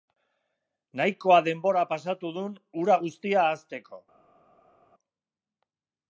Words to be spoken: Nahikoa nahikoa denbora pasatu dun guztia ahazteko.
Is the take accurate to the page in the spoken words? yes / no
no